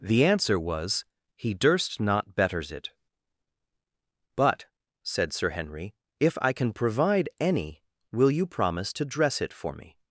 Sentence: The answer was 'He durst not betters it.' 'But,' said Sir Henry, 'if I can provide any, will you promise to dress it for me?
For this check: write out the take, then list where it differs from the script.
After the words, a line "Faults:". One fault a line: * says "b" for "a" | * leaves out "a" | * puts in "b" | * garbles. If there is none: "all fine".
The answer was 'He durst not betters it.' 'But,' said Sir Henry, 'if I can provide any, will you promise to dress it for me?
Faults:
all fine